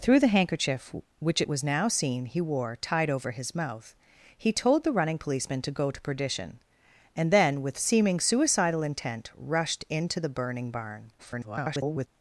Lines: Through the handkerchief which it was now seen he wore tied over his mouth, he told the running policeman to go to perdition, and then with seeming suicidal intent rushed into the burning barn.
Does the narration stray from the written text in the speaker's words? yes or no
yes